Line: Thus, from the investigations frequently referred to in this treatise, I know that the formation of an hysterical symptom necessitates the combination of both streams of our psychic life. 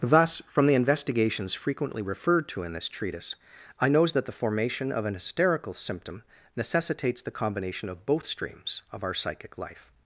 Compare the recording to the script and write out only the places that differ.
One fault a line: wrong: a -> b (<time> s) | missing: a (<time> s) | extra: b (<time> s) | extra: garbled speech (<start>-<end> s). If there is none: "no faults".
wrong: know -> knows (3.9 s)